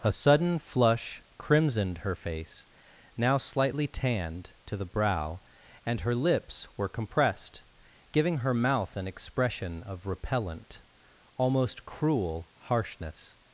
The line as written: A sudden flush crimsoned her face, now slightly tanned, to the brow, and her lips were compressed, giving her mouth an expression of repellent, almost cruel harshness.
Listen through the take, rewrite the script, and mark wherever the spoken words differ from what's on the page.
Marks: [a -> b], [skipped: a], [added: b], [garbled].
A sudden flush crimsoned her face, now slightly tanned, to the brow, and her lips were compressed, giving her mouth an expression of repellent, almost cruel harshness.